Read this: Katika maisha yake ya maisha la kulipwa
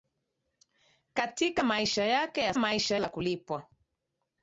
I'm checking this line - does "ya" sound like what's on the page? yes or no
yes